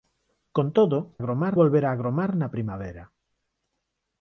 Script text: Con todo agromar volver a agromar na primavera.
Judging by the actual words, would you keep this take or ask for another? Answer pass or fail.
pass